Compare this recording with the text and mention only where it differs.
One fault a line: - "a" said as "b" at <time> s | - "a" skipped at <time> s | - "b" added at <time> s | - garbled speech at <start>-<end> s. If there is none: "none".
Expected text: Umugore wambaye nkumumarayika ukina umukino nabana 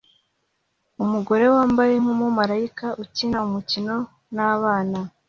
none